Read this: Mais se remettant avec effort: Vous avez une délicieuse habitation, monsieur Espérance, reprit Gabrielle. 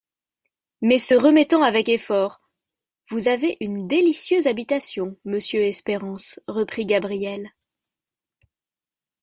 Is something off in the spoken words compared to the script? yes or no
no